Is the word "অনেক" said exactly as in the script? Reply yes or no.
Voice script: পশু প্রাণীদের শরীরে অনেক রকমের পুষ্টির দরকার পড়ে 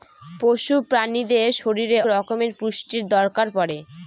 no